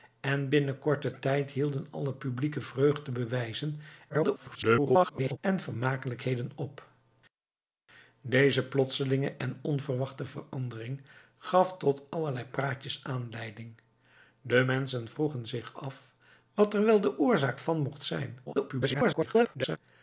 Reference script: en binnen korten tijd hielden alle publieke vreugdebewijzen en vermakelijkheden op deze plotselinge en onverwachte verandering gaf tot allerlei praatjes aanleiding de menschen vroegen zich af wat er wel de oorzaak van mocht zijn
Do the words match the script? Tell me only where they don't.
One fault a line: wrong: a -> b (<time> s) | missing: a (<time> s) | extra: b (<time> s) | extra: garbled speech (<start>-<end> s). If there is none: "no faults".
extra: garbled speech (4.1-5.4 s)
extra: garbled speech (18.5-19.8 s)